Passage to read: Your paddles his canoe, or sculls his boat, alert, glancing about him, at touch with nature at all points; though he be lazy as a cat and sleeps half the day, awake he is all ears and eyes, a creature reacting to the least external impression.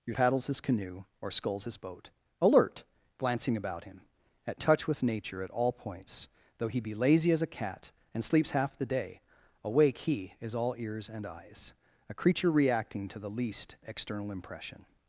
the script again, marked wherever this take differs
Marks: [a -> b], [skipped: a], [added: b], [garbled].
Your paddles his canoe, or sculls his boat, alert, glancing about him, at touch with nature at all points; though he be lazy as a cat and sleeps half the day, awake he is all ears and eyes, a creature reacting to the least external impression.